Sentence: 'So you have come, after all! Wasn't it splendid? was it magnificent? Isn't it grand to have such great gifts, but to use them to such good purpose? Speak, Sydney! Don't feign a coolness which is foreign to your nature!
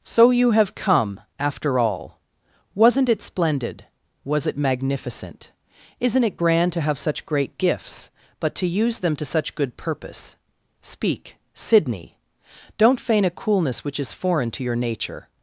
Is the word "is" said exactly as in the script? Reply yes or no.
yes